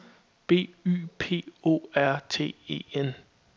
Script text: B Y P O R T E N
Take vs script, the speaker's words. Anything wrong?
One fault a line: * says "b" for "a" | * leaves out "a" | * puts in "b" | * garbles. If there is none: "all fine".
all fine